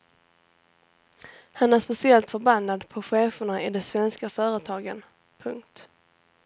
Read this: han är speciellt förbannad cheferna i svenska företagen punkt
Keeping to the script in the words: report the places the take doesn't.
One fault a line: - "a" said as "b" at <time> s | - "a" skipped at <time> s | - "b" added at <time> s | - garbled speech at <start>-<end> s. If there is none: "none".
- "på" added at 2.9 s
- "de" added at 3.7 s